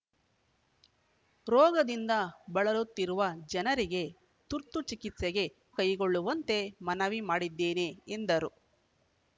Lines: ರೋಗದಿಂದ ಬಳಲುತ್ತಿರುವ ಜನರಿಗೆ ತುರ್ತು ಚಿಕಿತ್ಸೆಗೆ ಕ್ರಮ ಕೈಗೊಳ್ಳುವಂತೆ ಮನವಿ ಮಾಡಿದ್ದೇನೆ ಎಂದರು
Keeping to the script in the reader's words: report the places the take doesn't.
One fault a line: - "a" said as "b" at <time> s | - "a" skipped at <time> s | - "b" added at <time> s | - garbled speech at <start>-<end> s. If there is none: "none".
- "ಕ್ರಮ" skipped at 5.5 s